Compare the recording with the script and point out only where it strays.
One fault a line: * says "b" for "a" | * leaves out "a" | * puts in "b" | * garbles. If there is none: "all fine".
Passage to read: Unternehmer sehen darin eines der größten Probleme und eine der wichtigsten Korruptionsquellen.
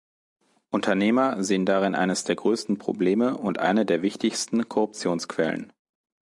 all fine